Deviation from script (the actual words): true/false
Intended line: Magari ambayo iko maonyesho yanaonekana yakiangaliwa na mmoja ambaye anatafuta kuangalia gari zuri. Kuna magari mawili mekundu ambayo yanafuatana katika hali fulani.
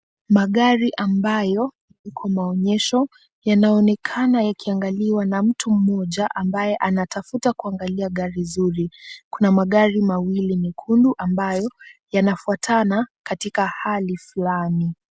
true